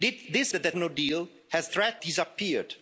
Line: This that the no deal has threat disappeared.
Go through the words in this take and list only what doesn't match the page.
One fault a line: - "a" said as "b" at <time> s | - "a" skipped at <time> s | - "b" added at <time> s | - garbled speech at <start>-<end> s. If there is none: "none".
none